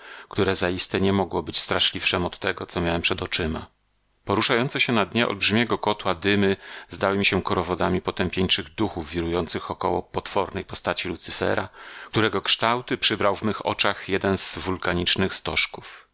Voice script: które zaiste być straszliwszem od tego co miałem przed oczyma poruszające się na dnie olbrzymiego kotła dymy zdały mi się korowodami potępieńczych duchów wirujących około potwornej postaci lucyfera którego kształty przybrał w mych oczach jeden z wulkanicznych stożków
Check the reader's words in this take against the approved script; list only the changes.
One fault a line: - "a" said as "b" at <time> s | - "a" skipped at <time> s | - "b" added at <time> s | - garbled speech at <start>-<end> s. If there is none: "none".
- "nie mogło" added at 1.0 s